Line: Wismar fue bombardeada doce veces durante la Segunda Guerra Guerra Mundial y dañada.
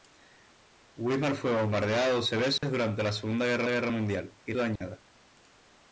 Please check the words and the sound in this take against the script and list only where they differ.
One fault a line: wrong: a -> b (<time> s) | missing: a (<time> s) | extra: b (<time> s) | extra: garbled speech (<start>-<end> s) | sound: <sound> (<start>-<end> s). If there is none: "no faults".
sound: dropout (2.6-2.6 s)
sound: dropout (4.8-4.8 s)